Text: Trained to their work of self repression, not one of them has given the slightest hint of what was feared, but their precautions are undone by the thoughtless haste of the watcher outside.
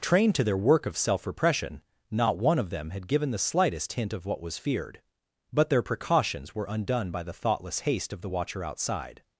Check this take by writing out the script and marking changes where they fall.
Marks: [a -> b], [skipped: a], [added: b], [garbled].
Trained to their work of self repression, not one of them [has -> had] given the slightest hint of what was feared, but their precautions [are -> were] undone by the thoughtless haste of the watcher outside.